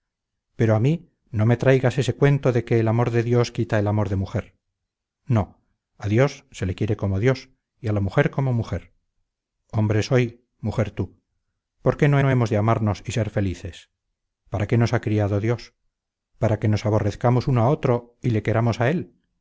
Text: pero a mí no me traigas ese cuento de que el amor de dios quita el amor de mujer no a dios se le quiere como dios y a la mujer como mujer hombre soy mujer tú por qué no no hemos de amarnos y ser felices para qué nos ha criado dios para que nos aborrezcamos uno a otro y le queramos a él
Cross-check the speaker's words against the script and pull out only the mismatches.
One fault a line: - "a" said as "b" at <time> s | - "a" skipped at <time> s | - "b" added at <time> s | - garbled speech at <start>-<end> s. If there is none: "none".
none